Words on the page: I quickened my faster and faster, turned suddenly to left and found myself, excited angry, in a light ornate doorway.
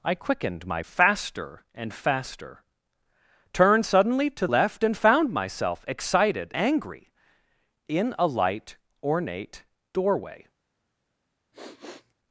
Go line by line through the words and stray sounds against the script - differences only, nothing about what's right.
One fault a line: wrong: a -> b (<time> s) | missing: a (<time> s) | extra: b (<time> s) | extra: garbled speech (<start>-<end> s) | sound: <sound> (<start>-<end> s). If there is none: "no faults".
sound: sniff (11.5-12.1 s)